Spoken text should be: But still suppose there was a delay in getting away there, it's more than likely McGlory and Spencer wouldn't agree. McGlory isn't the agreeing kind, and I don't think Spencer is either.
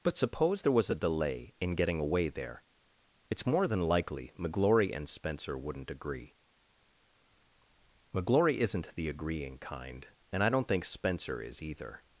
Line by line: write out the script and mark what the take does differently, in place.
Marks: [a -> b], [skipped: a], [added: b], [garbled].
But [skipped: still] suppose there was a delay in getting away there, it's more than likely McGlory and Spencer wouldn't agree. McGlory isn't the agreeing kind, and I don't think Spencer is either.